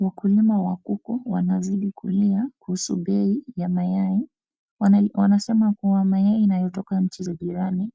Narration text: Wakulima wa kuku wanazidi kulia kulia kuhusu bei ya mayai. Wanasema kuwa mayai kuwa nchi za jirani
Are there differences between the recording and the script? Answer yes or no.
yes